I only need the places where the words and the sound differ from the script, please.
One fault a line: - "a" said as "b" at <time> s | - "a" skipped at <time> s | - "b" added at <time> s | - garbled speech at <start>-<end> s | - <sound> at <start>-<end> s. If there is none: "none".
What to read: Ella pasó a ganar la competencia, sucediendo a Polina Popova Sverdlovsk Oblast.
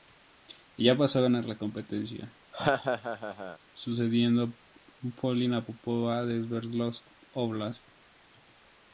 - laugh at 2.5-3.6 s
- "de" added at 6.3 s